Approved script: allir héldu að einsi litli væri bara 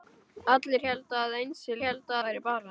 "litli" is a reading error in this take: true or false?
true